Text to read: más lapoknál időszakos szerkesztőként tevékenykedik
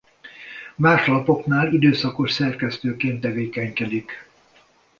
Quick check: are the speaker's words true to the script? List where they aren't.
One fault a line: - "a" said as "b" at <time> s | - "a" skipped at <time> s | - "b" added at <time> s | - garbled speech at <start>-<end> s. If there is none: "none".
none